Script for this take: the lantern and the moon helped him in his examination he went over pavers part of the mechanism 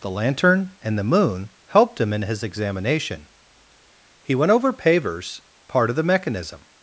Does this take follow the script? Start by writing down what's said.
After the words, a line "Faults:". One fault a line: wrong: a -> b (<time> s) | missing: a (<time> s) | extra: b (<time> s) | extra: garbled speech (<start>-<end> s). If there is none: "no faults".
the lantern and the moon helped him in his examination he went over pavers part of the mechanism
Faults:
no faults